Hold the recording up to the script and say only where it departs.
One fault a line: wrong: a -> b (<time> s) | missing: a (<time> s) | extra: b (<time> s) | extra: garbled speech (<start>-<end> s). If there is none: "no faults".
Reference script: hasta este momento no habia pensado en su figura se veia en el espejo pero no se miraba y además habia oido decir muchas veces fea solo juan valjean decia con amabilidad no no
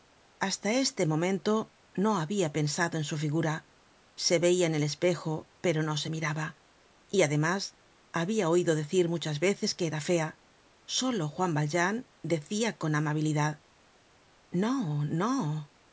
extra: que era (9.7 s)